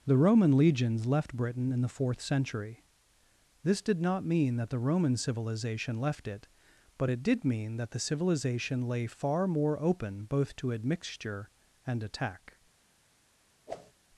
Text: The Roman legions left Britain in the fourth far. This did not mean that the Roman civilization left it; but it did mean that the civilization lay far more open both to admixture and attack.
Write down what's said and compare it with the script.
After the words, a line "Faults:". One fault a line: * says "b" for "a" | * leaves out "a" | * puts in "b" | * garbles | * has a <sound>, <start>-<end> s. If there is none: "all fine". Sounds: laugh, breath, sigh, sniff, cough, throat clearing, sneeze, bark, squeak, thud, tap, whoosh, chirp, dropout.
The Roman legions left Britain in the fourth century. This did not mean that the Roman civilization left it; but it did mean that the civilization lay far more open both to admixture and attack.
Faults:
* says "century" for "far"
* has a whoosh, 13.7-13.9 s